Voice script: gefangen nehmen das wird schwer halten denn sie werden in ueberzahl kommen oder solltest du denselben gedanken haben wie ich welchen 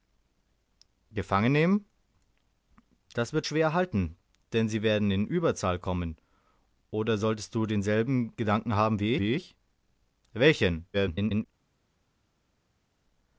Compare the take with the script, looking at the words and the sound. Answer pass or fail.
fail